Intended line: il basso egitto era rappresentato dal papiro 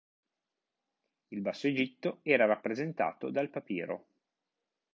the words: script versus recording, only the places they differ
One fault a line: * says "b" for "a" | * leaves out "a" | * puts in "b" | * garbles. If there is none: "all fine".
all fine